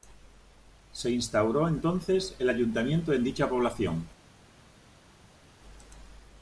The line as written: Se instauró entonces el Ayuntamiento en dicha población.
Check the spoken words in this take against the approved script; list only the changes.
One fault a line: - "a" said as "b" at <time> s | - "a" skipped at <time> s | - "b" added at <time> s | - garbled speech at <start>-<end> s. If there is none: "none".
none